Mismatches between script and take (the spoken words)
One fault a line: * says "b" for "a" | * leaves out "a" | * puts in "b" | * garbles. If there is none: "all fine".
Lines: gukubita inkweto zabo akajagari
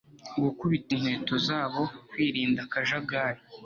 * puts in "kwirinda"